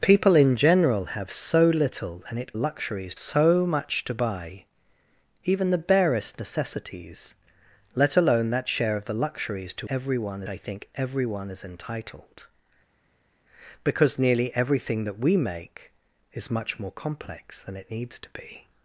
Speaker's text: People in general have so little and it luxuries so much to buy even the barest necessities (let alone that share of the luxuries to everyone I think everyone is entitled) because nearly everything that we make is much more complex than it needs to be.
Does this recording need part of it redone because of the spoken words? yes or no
no